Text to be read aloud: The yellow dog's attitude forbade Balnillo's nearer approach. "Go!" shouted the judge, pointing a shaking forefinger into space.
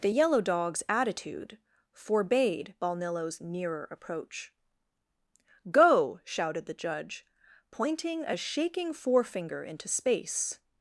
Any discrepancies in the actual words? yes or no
no